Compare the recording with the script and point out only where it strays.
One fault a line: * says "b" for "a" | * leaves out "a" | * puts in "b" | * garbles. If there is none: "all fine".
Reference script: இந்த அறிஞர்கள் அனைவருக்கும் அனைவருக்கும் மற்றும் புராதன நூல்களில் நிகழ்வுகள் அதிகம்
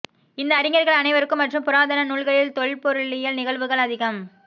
* leaves out "அனைவருக்கும்"
* puts in "தொல்பொருளியல்"